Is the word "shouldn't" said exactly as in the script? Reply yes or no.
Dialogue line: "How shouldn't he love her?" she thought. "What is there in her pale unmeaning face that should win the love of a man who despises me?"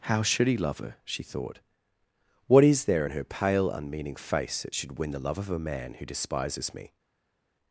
no